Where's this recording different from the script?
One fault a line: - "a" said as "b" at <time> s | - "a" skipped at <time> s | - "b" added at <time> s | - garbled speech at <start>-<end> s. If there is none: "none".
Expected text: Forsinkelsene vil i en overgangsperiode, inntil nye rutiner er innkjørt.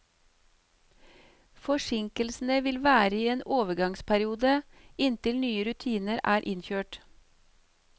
- "være" added at 2.8 s